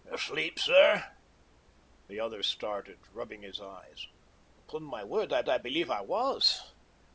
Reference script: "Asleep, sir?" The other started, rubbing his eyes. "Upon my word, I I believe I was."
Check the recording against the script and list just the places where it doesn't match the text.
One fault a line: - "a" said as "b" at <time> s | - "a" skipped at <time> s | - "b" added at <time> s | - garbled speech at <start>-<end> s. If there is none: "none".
none